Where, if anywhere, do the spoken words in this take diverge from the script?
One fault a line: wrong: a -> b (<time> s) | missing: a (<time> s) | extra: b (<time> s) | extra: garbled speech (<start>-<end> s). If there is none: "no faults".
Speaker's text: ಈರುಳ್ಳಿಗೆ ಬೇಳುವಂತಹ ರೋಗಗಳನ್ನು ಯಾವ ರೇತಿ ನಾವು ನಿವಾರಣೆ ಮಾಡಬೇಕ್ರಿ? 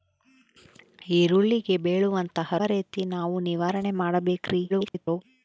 missing: ರೋಗಗಳನ್ನು ಯಾವ (2.6 s)
extra: garbled speech (4.7-5.2 s)